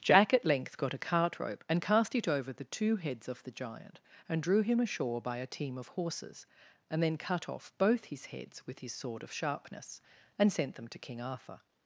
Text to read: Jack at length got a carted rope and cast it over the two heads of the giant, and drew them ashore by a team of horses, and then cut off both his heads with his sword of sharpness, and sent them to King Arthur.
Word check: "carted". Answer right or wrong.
wrong